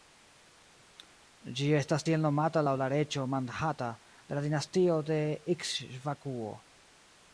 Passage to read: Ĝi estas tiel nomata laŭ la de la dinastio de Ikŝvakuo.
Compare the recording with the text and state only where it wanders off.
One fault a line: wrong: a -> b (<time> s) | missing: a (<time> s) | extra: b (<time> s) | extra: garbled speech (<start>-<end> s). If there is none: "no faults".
extra: reĝo Mandhata (2.9 s)